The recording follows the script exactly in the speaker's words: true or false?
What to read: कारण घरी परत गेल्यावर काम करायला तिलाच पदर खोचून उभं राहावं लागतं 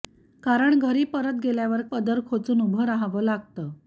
false